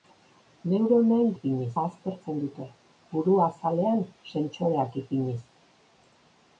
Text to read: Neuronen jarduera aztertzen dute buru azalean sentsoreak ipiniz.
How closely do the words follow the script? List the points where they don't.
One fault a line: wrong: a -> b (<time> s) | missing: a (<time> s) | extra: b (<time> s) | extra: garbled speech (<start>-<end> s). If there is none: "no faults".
wrong: jarduera -> ipiniz (1.4 s)